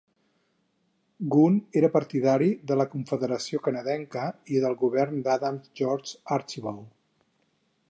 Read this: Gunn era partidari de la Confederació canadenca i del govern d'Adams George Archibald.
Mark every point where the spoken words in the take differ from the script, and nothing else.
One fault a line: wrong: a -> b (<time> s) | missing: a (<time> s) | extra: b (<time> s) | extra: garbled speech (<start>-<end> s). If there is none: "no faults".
no faults